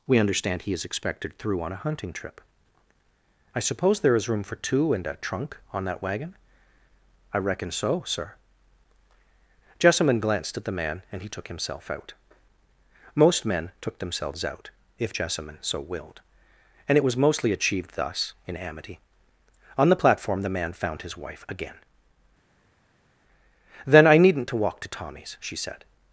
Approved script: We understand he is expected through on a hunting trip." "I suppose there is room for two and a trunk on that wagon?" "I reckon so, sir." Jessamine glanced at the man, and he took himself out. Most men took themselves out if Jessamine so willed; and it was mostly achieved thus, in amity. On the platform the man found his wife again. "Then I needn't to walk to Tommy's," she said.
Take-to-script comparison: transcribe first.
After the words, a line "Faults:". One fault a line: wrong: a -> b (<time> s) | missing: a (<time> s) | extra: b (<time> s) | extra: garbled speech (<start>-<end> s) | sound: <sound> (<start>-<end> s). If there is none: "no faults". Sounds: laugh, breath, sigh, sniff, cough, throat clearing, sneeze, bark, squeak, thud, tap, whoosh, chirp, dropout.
We understand he is expected through on a hunting trip." "I suppose there is room for two and a trunk on that wagon?" "I reckon so, sir." Jessamine glanced at the man, and he took himself out. Most men took themselves out if Jessamine so willed; and it was mostly achieved thus, in amity. On the platform the man found his wife again. "Then I needn't to walk to Tommy's," she said.
Faults:
no faults